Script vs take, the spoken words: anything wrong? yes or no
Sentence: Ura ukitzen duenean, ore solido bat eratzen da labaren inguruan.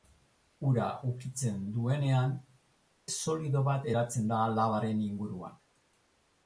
yes